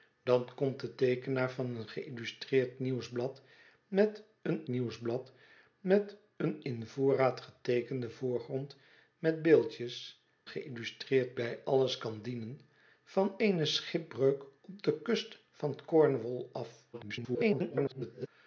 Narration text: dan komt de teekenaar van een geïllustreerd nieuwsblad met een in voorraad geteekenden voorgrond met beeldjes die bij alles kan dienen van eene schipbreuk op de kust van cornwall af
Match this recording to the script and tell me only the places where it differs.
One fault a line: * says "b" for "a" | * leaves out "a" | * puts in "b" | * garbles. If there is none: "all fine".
* puts in "nieuwsblad met een"
* says "geïllustreerd" for "die"
* garbles